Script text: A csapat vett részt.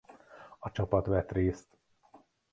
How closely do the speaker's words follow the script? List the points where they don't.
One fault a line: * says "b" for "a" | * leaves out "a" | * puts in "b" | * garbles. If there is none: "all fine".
all fine